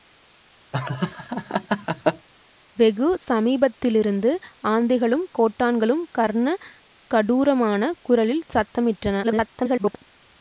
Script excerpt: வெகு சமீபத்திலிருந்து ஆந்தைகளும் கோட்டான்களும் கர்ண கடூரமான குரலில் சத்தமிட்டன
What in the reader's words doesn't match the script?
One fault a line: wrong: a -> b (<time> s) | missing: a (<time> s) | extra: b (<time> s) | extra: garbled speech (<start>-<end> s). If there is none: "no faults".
extra: garbled speech (9.2-9.9 s)